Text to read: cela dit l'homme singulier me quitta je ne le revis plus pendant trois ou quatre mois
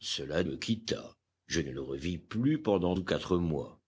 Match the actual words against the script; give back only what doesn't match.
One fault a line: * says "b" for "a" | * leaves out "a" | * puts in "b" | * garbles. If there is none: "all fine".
* leaves out "dit l'homme singulier"
* leaves out "trois"